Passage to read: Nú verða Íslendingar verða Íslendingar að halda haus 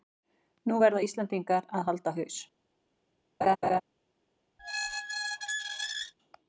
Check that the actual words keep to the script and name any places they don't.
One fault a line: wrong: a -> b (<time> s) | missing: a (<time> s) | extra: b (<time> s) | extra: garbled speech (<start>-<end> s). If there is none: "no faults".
missing: verða Íslendingar (1.7 s)